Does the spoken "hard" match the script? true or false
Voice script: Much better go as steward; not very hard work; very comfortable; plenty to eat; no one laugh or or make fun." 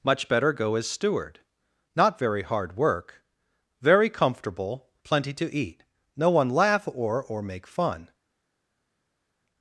true